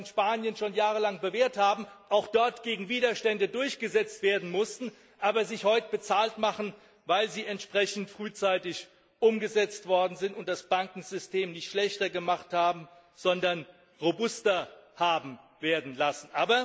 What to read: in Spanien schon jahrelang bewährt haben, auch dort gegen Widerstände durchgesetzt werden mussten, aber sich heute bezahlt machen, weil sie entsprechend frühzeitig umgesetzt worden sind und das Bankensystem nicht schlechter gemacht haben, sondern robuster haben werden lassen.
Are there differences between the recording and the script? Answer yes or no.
no